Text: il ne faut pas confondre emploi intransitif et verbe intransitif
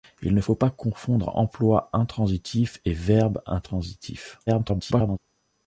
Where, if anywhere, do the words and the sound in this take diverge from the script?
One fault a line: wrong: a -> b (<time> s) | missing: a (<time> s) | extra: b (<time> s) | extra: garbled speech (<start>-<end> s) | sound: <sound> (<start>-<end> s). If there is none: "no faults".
extra: garbled speech (4.5-5.2 s)